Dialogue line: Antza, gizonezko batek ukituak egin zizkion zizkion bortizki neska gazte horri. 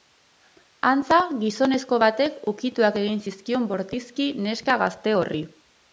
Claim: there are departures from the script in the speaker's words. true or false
true